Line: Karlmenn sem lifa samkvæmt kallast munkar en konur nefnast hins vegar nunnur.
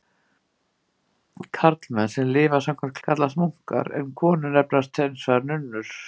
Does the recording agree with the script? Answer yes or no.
yes